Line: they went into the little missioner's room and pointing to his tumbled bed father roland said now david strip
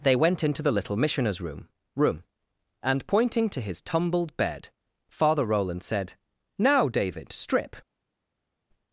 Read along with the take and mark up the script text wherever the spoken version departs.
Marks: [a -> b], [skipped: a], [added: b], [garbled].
they went into the little missioner's room [added: room] and pointing to his tumbled bed father roland said now david strip